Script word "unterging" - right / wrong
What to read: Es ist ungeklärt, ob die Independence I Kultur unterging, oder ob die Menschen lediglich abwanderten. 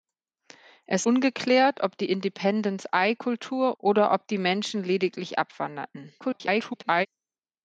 wrong